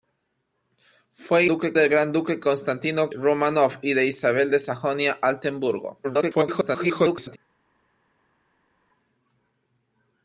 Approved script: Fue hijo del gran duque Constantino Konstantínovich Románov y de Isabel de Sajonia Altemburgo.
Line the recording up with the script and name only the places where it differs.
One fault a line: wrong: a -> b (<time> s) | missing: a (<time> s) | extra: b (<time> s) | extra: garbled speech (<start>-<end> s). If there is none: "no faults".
wrong: hijo -> duque (1.5 s)
missing: Konstantínovich (3.1 s)
extra: garbled speech (6.0-7.4 s)